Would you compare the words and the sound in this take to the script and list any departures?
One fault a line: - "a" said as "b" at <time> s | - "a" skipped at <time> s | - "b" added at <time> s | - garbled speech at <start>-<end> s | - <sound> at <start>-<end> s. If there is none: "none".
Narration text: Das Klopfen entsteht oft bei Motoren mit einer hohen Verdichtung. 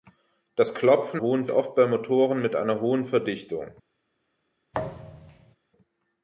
- "entsteht" said as "hohen" at 1.2 s
- thud at 4.7-5.6 s